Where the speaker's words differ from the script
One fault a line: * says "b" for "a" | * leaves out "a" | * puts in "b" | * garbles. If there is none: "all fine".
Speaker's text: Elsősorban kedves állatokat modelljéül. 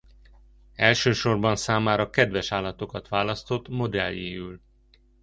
* puts in "számára"
* puts in "választott"